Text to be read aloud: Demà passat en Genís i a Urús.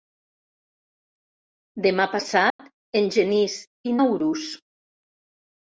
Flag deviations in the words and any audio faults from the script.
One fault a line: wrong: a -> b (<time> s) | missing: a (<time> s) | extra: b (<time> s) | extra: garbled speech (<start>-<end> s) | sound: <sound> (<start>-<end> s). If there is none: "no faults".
sound: dropout (2.5-2.6 s)